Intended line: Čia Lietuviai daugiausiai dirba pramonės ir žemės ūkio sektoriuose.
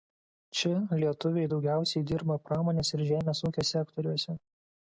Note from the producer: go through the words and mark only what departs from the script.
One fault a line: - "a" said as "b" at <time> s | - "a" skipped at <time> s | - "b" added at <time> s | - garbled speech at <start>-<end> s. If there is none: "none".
none